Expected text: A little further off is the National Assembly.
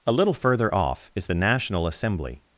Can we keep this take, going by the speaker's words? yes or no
yes